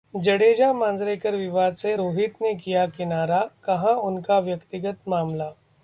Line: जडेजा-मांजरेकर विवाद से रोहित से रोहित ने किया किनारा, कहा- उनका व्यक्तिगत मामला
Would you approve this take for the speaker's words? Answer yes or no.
no